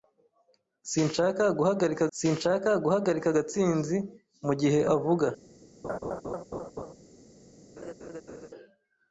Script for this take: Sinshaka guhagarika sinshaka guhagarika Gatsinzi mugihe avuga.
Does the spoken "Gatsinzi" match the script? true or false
true